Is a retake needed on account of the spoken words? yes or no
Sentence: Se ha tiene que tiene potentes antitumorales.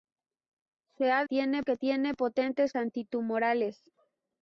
no